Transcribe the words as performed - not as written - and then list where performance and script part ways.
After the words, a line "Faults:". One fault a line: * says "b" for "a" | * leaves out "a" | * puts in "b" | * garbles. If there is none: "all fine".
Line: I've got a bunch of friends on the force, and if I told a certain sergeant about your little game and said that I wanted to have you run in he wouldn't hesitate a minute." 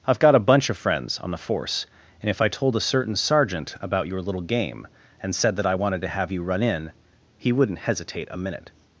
I've got a bunch of friends on the force, and if I told a certain sergeant about your little game and said that I wanted to have you run in he wouldn't hesitate a minute."
Faults:
all fine